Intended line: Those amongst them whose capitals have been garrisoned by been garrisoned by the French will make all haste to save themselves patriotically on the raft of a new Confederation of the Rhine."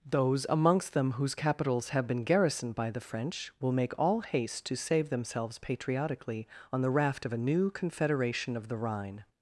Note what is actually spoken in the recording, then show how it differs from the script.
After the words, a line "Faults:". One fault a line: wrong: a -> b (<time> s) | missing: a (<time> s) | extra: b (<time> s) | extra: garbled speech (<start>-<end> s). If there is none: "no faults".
Those amongst them whose capitals have been garrisoned by the French will make all haste to save themselves patriotically on the raft of a new Confederation of the Rhine."
Faults:
missing: been garrisoned by (2.9 s)